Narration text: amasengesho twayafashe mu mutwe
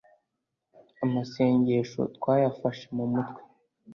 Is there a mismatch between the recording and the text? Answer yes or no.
no